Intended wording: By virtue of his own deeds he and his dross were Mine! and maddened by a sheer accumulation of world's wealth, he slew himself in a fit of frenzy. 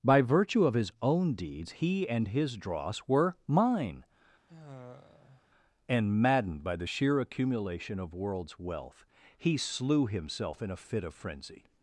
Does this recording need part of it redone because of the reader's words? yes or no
yes